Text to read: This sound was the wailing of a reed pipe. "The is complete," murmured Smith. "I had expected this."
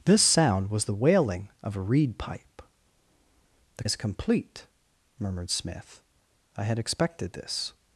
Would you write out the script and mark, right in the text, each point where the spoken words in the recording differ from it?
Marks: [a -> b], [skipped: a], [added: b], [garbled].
This sound was the wailing of a reed pipe. "The is complete," murmured Smith. "I had expected this."